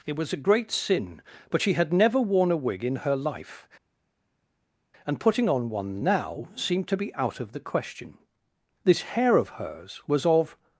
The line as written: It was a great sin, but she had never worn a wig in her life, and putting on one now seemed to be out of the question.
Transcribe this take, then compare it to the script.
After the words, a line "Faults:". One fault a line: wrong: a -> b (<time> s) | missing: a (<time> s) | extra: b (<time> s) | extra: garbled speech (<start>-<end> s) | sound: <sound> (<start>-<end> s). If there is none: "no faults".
It was a great sin, but she had never worn a wig in her life, and putting on one now seemed to be out of the question. This hair of hers was of
Faults:
extra: This hair of hers was of (8.8 s)